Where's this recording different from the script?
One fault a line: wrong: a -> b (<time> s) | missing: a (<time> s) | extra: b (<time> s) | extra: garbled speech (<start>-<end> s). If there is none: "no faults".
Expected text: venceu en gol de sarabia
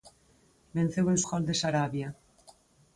no faults